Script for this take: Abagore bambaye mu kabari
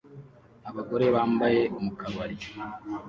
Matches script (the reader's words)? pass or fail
pass